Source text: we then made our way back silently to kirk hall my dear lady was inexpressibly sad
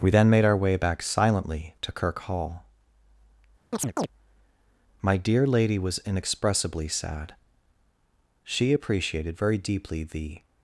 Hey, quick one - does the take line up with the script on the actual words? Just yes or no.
no